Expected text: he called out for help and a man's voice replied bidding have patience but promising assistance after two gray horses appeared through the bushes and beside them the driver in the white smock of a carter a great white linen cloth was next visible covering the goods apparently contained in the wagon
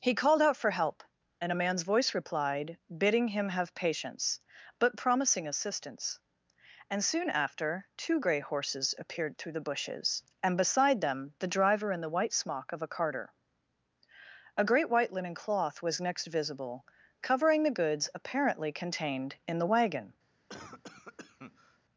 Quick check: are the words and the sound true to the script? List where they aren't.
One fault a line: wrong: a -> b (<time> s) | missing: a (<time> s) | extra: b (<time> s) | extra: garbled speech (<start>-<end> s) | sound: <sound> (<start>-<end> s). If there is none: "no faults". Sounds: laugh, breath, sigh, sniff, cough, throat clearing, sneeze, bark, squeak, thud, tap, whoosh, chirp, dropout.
extra: him (3.3 s)
extra: and soon (6.9 s)
sound: cough (20.5-21.8 s)